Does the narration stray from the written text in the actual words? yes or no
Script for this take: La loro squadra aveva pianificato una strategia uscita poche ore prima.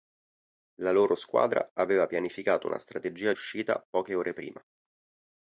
no